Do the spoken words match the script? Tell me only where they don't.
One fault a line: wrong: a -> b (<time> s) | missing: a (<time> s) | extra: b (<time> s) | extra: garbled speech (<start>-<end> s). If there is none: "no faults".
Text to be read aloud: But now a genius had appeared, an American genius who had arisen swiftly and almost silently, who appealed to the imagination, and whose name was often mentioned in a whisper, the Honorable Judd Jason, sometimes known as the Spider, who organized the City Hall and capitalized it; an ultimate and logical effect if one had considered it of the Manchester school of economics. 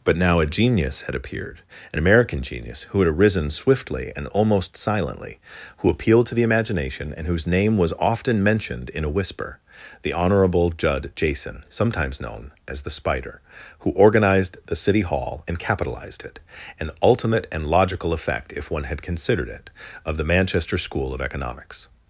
no faults